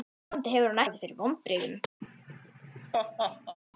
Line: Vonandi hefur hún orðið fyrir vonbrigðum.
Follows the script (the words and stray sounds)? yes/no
no